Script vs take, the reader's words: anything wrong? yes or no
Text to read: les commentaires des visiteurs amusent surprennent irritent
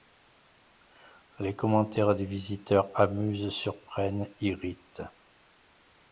no